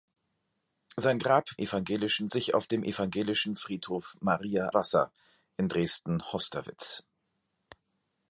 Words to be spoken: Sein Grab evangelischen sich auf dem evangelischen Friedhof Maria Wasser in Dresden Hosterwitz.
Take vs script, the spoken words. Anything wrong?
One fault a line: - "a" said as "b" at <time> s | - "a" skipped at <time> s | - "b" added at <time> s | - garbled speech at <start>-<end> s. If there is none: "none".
none